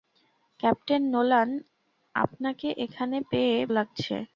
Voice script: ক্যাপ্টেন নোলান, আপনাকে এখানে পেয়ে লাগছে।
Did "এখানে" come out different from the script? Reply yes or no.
no